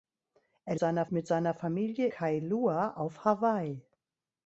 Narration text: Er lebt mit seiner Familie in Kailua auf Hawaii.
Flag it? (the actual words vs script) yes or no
yes